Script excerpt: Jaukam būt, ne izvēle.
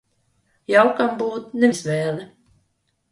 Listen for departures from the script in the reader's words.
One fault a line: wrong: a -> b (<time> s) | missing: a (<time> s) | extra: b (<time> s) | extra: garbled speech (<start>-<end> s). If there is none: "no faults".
no faults